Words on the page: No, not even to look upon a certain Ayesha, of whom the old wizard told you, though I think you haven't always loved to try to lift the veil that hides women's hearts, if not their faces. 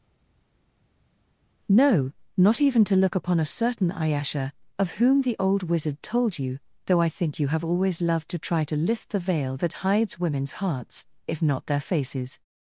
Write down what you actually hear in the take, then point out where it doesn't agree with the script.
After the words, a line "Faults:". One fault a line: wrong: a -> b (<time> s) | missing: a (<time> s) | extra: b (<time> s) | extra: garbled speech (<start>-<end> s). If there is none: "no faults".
No, not even to look upon a certain Ayesha, of whom the old wizard told you, though I think you have always loved to try to lift the veil that hides women's hearts, if not their faces.
Faults:
wrong: haven't -> have (7.5 s)